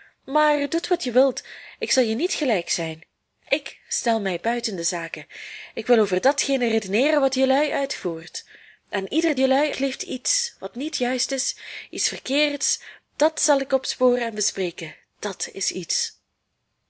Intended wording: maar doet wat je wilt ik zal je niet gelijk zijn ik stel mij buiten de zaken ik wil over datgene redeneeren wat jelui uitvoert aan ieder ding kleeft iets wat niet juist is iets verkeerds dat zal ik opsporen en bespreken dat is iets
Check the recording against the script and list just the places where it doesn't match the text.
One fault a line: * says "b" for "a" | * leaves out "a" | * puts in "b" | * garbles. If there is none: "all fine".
* says "jelui" for "ding"